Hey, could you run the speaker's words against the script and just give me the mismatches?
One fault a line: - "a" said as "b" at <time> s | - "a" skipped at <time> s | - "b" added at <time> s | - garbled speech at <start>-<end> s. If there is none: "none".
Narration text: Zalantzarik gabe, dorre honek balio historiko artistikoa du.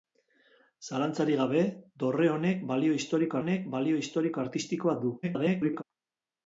- "honek balio historiko" added at 3.4 s
- garbled speech at 5.2-5.8 s